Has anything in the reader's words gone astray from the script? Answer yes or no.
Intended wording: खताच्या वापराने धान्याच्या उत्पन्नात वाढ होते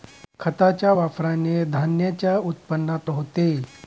yes